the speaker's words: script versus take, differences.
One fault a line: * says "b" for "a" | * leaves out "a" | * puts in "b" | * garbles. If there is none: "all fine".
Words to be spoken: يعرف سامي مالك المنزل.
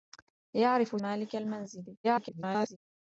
* leaves out "سامي"
* garbles